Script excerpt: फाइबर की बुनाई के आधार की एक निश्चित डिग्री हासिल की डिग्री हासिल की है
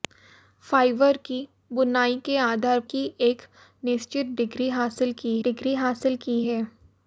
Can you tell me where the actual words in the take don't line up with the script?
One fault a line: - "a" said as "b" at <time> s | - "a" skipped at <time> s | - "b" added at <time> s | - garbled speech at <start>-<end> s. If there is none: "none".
none